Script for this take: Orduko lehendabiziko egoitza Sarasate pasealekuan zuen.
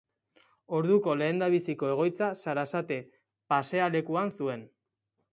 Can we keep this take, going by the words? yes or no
yes